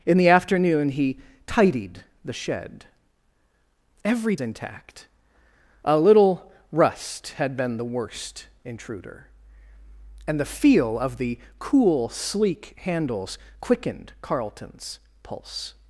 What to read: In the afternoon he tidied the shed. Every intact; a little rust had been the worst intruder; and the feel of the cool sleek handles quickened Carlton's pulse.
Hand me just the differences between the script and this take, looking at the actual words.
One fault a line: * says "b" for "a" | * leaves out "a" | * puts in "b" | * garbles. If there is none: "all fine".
all fine